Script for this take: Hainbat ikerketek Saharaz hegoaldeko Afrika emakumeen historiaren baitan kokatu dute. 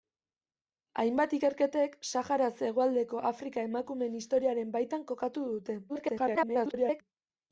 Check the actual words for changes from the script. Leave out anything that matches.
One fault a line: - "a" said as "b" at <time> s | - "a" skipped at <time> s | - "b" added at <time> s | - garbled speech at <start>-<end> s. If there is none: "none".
- garbled speech at 5.9-7.0 s